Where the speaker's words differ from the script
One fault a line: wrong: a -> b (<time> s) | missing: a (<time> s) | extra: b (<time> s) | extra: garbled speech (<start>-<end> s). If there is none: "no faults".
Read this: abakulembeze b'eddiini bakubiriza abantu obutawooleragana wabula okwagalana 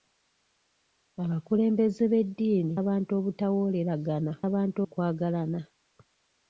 missing: bakubiriza (2.8 s)
wrong: wabula -> abantu (4.5 s)